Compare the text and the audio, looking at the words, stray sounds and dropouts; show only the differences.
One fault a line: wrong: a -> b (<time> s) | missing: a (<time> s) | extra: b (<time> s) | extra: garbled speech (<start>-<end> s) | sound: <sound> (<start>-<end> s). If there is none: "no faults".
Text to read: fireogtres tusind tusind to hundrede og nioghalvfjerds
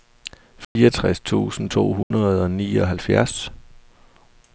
sound: dropout (0.6-0.8 s)
missing: tusind (1.7 s)
sound: dropout (2.0-2.1 s)